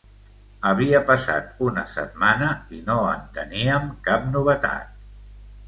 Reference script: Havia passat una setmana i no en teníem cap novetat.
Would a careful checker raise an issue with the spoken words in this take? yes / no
no